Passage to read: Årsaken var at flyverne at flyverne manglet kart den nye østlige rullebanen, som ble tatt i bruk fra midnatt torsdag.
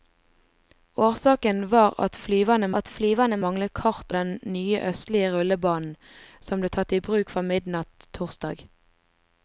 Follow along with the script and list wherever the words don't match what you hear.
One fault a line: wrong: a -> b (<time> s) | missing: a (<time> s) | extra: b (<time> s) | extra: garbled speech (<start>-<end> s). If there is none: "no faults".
no faults